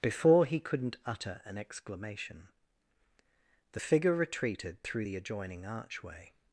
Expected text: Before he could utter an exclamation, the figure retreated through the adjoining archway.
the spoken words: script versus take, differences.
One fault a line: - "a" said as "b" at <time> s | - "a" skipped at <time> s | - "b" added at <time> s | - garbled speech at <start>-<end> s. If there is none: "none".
- "could" said as "couldn't" at 0.6 s